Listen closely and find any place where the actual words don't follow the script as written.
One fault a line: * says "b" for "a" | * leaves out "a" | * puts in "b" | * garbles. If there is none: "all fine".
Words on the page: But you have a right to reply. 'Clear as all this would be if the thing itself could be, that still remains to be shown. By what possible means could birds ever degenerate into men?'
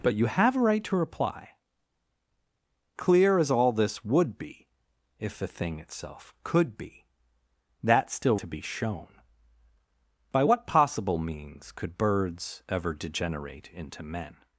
* leaves out "remains"